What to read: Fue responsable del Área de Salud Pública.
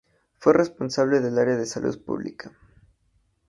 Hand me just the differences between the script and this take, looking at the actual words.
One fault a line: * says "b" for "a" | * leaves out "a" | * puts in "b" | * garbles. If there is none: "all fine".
all fine